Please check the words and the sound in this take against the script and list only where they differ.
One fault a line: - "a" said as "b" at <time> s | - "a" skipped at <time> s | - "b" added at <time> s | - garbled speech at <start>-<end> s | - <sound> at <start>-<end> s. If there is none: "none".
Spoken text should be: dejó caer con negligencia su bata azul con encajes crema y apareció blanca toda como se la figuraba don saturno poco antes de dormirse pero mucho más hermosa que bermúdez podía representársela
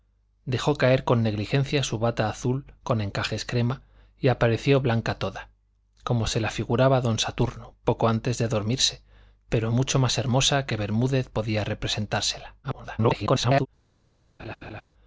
- garbled speech at 12.6-13.7 s
- laugh at 14.4-14.8 s